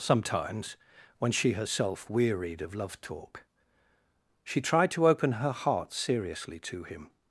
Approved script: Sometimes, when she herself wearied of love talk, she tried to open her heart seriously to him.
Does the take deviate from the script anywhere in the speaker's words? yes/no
no